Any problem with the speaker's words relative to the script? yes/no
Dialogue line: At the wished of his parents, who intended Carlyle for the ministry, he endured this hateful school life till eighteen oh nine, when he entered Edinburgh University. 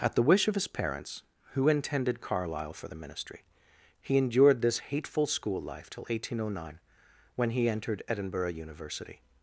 yes